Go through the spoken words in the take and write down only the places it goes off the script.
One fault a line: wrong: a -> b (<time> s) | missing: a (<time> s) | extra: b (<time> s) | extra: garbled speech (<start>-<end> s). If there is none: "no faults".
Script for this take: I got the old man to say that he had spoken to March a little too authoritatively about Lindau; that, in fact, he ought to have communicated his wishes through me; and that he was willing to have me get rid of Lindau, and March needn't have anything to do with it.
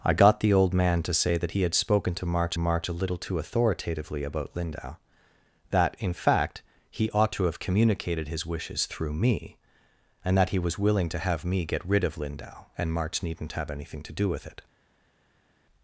extra: March (2.6 s)